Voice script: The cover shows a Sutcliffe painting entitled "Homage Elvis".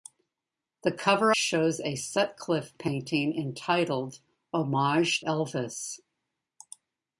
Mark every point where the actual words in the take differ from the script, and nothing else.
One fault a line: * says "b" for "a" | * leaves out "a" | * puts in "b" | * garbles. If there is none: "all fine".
all fine